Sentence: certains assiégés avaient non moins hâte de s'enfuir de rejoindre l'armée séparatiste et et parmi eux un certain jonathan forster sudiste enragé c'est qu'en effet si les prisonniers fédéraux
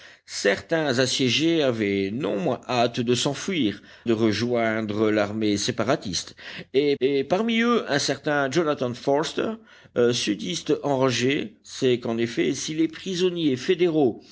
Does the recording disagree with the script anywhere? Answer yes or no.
no